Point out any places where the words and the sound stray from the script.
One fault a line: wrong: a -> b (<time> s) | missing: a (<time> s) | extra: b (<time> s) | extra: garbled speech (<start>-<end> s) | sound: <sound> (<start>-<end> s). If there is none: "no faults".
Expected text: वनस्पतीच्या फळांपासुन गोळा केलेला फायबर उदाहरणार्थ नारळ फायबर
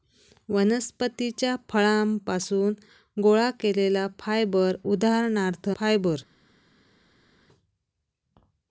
missing: नारळ (5.7 s)